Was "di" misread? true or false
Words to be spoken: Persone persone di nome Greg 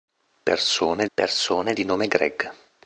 false